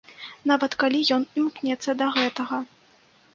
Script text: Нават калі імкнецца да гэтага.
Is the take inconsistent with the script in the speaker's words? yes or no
yes